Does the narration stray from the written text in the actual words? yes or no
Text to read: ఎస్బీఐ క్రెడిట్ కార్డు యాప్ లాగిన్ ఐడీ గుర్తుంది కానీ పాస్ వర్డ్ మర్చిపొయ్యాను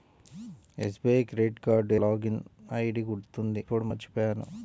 yes